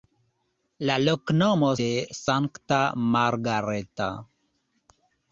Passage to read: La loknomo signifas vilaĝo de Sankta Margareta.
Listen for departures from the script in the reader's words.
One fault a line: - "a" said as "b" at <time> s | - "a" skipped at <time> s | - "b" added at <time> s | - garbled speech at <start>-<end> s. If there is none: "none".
- "signifas vilaĝo" skipped at 1.7 s